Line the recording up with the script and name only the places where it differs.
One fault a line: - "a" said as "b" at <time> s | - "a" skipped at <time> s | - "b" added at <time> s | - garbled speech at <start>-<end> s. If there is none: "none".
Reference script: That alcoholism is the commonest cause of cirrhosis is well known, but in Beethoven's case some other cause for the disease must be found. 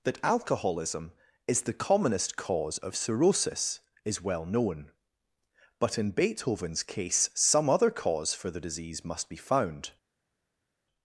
none